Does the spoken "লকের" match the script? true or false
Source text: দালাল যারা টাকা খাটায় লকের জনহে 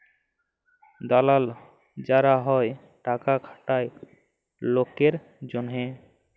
true